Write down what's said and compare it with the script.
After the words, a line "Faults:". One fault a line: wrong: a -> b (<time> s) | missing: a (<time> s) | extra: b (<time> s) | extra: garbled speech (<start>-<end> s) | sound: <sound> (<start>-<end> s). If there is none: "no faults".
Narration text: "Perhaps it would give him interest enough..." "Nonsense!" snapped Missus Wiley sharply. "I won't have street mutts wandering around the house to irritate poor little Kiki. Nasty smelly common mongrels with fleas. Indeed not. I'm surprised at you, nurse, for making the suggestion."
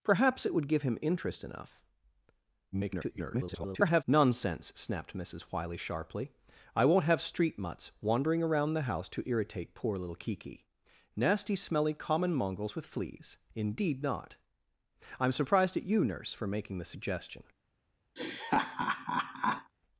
"Perhaps it would give him interest enough..." [garbled] "Nonsense!" snapped Missus Wiley sharply. "I won't have street mutts wandering around the house to irritate poor little Kiki. Nasty smelly common mongrels with fleas. Indeed not. I'm surprised at you, nurse, for making the suggestion."
Faults:
extra: garbled speech (2.7-4.0 s)
sound: laugh (18.2-19.7 s)